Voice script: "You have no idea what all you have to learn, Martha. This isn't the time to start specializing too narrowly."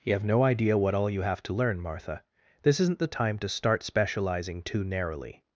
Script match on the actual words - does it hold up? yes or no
yes